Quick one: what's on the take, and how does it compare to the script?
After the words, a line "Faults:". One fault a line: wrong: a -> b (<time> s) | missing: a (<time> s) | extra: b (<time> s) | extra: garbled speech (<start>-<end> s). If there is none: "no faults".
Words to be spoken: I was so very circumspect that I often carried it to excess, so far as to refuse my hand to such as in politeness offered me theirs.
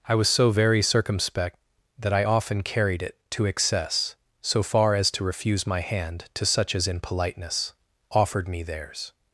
I was so very circumspect that I often carried it to excess, so far as to refuse my hand to such as in politeness offered me theirs.
Faults:
no faults